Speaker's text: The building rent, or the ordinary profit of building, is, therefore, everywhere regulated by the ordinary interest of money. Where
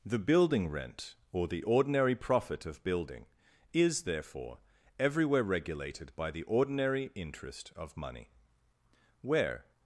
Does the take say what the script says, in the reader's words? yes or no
yes